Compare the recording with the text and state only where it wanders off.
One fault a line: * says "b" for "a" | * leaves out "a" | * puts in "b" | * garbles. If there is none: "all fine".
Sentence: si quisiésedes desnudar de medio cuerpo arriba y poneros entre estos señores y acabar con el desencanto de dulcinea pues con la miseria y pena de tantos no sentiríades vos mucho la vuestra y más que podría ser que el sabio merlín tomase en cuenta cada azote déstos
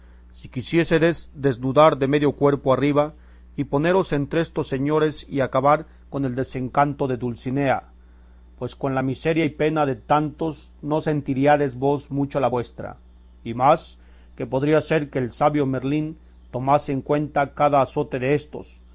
all fine